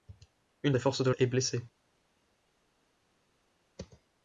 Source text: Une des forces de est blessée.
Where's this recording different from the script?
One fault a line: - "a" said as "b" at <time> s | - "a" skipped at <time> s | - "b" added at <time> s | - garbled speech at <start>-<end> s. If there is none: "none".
none